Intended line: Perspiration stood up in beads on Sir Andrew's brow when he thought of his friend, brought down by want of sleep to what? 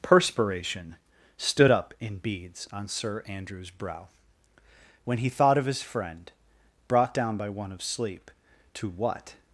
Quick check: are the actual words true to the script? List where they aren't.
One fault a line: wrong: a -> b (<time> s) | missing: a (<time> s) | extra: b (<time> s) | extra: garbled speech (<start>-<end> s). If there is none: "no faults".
wrong: want -> one (7.5 s)